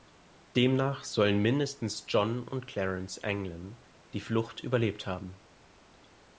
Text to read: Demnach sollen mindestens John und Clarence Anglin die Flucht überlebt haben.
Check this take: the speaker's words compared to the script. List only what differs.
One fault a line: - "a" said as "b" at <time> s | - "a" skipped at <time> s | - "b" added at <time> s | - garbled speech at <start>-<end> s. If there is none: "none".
none